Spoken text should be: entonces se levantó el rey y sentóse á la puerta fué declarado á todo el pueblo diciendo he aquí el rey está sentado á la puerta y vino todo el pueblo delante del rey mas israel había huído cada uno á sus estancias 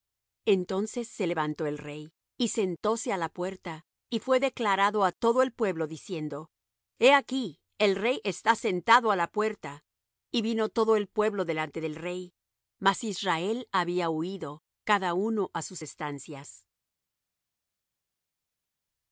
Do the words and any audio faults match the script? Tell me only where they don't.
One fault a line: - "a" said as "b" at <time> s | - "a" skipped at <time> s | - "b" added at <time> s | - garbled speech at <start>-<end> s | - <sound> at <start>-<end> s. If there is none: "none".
- "y" added at 4.1 s